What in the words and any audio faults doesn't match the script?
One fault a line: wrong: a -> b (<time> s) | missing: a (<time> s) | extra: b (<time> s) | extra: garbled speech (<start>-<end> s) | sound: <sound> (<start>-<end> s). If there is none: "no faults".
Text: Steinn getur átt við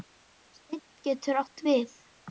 no faults